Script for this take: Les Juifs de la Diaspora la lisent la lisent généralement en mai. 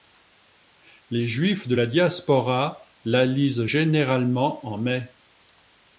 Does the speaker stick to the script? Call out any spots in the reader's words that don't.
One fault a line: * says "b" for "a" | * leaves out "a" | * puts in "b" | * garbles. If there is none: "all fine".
* leaves out "la lisent"